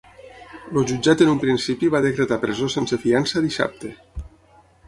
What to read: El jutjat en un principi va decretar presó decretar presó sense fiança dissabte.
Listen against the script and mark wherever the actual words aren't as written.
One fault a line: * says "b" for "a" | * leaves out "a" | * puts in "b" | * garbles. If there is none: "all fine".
* leaves out "decretar presó"